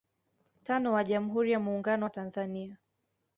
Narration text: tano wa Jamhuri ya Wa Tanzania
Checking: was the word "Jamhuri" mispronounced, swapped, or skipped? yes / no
no